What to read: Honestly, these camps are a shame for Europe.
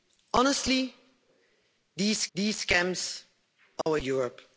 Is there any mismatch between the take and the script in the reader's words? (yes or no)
yes